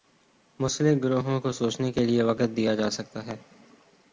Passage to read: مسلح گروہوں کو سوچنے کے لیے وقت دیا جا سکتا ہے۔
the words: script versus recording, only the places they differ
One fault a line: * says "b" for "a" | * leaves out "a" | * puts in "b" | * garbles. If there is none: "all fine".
all fine